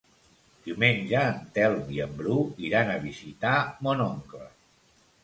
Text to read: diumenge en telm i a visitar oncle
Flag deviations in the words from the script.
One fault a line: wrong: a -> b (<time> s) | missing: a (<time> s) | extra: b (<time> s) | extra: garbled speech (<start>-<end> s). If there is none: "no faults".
extra: en bru iran (2.0 s)
extra: mon (3.9 s)